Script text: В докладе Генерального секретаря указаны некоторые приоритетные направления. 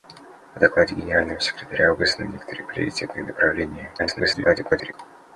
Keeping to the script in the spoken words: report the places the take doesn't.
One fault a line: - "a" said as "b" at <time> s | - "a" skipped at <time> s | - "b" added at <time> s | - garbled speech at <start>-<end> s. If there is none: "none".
- garbled speech at 4.0-4.9 s